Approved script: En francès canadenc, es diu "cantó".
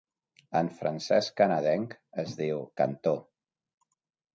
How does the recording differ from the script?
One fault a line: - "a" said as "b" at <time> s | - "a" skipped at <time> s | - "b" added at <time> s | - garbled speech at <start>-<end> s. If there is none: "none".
none